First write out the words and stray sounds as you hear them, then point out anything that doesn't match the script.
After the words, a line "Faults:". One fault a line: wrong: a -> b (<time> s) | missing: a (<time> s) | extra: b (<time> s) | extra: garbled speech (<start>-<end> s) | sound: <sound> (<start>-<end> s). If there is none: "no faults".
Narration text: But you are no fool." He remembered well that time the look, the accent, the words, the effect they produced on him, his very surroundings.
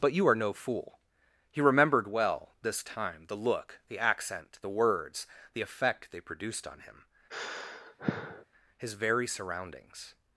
But you are no fool." He remembered well this time the look, the accent, the words, the effect they produced on him, his very surroundings.
Faults:
wrong: that -> this (2.6 s)
sound: sigh (7.3-8.4 s)